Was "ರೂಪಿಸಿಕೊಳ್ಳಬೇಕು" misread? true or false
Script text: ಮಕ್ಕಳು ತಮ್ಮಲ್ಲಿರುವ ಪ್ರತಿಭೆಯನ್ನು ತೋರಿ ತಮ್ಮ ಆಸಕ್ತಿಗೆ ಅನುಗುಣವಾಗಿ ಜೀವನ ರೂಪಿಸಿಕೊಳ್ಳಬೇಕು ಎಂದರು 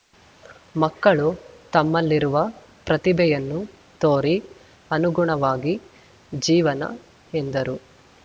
true